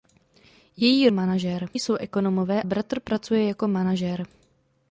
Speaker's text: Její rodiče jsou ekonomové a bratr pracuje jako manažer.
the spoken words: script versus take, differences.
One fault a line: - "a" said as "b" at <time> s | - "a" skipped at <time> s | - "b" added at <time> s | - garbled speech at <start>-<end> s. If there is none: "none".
- "rodiče" said as "manažer" at 1.1 s
- "a" skipped at 2.6 s